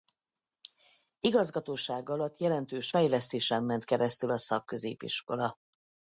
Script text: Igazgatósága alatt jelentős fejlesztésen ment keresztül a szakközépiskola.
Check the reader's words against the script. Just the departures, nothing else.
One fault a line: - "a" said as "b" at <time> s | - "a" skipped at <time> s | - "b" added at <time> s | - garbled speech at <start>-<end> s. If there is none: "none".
none